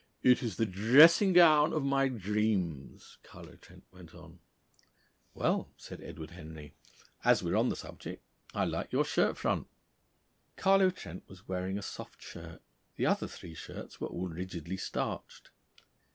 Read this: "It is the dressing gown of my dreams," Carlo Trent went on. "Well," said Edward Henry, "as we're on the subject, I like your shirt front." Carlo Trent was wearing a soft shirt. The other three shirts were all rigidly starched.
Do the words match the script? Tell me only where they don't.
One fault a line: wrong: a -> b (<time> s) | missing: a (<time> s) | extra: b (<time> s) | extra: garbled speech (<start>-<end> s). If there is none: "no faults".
no faults